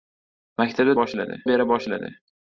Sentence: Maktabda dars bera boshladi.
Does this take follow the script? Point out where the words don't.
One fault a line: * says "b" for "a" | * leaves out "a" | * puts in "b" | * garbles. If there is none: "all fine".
* says "boshladi" for "dars"